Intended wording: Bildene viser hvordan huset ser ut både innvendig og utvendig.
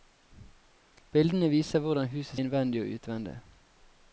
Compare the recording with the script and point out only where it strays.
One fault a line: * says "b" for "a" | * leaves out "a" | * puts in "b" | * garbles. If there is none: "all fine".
* leaves out "ser ut både"